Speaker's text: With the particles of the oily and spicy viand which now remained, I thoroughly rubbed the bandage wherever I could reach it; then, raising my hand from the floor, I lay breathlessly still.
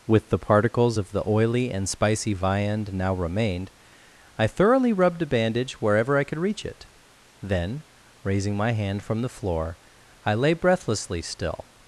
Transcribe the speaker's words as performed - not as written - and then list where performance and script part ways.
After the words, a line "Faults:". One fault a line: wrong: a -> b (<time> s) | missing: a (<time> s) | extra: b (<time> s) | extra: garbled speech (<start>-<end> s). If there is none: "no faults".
With the particles of the oily and spicy viand now remained, I thoroughly rubbed a bandage wherever I could reach it; then, raising my hand from the floor, I lay breathlessly still.
Faults:
missing: which (2.9 s)
wrong: the -> a (5.2 s)